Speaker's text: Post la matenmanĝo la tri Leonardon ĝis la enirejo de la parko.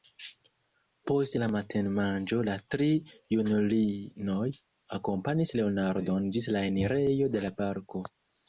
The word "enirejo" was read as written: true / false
true